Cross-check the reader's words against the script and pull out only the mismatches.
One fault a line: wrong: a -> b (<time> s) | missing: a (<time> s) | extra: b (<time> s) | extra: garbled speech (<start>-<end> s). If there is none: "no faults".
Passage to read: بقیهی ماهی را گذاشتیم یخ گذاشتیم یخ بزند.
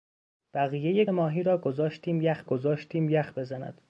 no faults